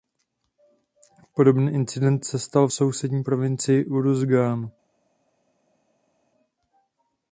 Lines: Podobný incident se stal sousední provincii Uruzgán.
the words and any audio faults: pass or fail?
pass